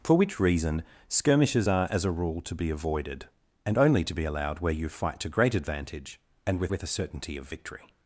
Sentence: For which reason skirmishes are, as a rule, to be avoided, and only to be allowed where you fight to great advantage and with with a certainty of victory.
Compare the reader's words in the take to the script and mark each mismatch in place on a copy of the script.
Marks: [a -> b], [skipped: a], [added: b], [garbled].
For which reason skirmishes are, as a rule, to be avoided, and only to be allowed where you fight to great advantage and with with a certainty of victory.